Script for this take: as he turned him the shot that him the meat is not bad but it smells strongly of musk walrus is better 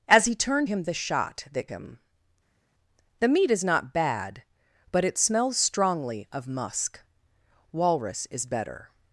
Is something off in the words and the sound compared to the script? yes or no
no